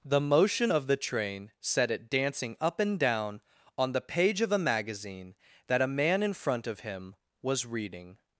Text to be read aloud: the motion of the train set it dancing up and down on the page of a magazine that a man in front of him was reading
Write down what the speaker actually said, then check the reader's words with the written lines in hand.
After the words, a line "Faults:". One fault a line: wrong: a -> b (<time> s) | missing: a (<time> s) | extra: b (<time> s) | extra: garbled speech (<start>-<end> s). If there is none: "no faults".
the motion of the train set it dancing up and down on the page of a magazine that a man in front of him was reading
Faults:
no faults